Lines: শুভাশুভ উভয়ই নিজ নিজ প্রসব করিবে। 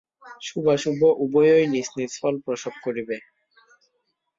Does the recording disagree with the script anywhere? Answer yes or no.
yes